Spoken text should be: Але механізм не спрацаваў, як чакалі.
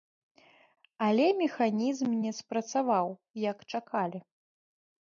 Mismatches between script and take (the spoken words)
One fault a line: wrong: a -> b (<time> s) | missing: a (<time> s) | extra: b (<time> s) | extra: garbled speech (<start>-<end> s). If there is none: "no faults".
no faults